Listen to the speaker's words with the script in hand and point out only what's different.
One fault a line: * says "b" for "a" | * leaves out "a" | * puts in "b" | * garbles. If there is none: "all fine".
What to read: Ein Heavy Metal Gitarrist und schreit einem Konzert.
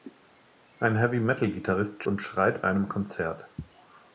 all fine